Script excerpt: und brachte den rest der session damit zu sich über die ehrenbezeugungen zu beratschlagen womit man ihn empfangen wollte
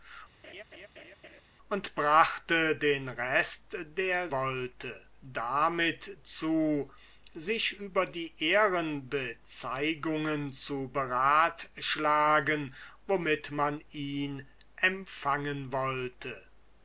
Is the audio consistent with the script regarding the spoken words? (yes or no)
no